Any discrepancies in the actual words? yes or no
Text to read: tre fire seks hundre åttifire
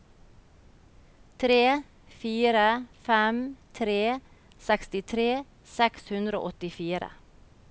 yes